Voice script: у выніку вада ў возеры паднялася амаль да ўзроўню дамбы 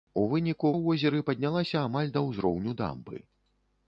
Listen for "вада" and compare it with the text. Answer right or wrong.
wrong